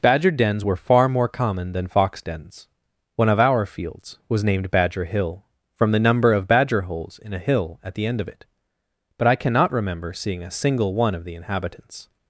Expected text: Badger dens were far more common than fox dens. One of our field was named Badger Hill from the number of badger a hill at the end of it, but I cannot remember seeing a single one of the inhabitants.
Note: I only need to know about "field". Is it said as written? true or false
false